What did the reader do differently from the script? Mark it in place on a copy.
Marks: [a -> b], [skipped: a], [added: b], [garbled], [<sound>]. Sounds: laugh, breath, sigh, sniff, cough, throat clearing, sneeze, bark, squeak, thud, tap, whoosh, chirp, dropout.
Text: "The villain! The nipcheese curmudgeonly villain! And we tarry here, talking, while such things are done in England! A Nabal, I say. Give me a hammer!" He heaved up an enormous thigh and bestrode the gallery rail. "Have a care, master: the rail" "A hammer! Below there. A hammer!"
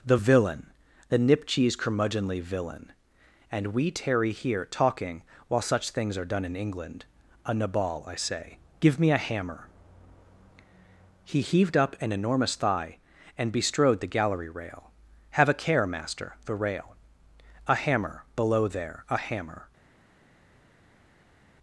"The villain! The nipcheese curmudgeonly villain! And we tarry here, talking, while such things are done in England! A Nabal, I say. Give me a hammer!" He heaved up an enormous thigh and bestrode the gallery rail. "Have a care, master: the rail" "A hammer! Below there. A hammer!"